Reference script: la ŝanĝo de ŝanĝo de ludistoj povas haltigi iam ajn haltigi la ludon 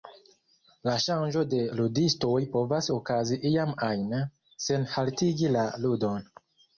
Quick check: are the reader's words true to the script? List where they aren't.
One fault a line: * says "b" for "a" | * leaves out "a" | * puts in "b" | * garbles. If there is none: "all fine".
* leaves out "ŝanĝo de"
* says "okazi" for "haltigi"
* puts in "sen"